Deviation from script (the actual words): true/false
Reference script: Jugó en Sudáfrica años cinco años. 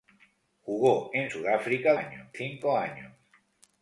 false